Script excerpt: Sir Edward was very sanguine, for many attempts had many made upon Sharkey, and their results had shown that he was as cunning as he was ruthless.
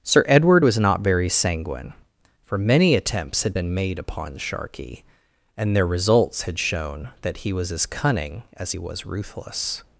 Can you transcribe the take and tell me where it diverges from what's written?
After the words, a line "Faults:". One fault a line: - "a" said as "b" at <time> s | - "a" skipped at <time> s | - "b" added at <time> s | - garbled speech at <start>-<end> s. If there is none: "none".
Sir Edward was not very sanguine, for many attempts had been made upon Sharkey, and their results had shown that he was as cunning as he was ruthless.
Faults:
- "not" added at 0.8 s
- "many" said as "been" at 3.5 s